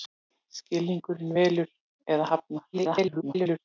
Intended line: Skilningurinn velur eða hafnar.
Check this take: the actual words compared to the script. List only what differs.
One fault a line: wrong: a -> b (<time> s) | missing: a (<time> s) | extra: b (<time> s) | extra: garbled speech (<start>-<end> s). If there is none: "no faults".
extra: garbled speech (2.7-3.6 s)